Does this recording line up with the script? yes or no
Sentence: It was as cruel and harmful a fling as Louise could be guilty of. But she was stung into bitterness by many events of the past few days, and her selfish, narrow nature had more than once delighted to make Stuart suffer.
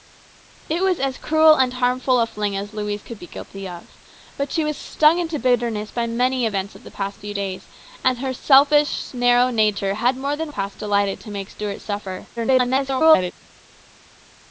no